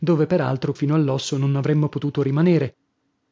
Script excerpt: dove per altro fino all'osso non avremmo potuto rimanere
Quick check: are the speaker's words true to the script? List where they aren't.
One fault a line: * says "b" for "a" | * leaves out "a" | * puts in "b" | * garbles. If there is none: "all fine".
all fine